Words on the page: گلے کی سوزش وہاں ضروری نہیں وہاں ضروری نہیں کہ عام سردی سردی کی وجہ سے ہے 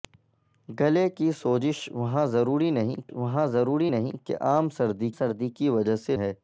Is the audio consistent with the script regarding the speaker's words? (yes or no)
yes